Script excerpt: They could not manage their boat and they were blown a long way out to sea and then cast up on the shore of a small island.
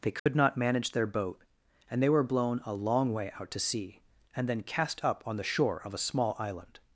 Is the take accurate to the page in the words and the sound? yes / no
no